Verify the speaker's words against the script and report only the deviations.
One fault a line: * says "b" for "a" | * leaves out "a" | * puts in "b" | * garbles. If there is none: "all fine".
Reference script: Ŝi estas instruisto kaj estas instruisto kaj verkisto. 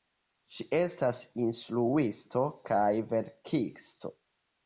* leaves out "estas instruisto kaj"